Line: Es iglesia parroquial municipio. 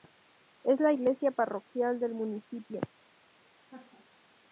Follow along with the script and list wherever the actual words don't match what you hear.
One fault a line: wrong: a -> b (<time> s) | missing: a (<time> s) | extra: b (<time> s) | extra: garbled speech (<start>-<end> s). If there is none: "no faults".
extra: la (0.8 s)
extra: del (2.0 s)